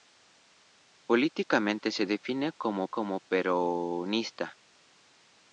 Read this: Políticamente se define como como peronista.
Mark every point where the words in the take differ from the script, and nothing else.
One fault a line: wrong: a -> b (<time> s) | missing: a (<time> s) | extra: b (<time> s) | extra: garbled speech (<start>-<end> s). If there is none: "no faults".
no faults